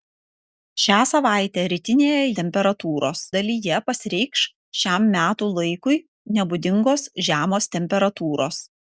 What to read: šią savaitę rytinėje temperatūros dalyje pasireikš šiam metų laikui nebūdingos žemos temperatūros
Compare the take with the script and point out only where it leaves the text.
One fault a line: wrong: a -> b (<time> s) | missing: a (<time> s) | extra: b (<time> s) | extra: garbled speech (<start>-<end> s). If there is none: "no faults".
no faults